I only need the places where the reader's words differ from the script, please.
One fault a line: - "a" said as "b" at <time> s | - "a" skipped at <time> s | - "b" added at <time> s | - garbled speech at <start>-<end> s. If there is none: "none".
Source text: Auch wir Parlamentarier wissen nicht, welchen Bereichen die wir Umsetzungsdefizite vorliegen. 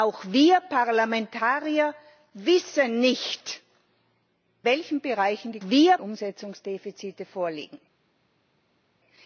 none